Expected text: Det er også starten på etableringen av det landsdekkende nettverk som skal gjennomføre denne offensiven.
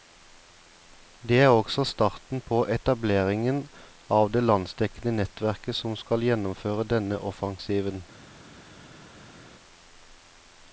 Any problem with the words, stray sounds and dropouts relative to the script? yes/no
no